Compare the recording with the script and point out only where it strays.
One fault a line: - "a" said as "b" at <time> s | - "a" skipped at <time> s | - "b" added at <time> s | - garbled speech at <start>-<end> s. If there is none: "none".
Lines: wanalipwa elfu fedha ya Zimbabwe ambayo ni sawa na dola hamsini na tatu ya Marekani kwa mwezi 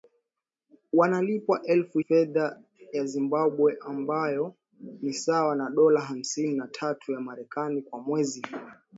none